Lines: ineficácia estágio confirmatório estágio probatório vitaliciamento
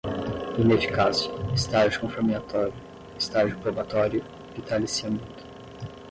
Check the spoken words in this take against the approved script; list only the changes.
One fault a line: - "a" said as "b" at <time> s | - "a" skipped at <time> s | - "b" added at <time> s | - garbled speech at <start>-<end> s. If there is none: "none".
none